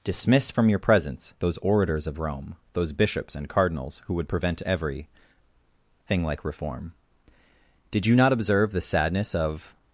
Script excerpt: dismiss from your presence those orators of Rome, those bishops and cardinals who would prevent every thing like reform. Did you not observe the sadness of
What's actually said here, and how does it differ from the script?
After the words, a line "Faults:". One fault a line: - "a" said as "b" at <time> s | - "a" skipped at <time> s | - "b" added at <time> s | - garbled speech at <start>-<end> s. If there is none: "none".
dismiss from your presence those orators of Rome, those bishops and cardinals who would prevent every thing like reform. Did you not observe the sadness of
Faults:
none